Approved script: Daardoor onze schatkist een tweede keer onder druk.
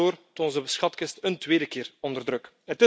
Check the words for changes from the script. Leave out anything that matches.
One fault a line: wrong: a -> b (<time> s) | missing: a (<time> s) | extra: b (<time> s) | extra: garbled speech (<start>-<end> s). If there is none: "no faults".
no faults